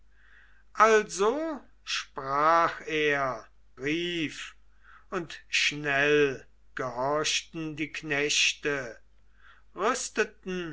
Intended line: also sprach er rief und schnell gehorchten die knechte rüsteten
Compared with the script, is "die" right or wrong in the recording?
right